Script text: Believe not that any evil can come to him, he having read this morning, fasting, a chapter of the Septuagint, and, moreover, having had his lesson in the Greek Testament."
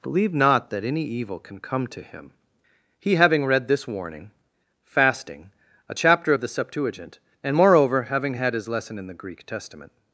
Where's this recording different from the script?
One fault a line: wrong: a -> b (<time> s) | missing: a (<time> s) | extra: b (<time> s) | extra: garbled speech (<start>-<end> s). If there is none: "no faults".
wrong: morning -> warning (3.9 s)